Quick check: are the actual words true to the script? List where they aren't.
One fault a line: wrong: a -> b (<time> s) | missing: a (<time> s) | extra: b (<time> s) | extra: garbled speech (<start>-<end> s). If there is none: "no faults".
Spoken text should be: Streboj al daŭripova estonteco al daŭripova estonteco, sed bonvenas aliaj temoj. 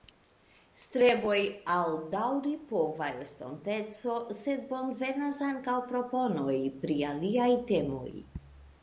wrong: al daŭripova estonteco sed bonvenas -> sed bonvenas ankaŭ proponoj pri (4.4 s)